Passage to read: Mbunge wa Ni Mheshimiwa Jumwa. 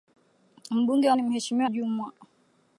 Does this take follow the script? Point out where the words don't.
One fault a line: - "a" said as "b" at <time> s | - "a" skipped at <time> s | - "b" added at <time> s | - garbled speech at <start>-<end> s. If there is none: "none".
none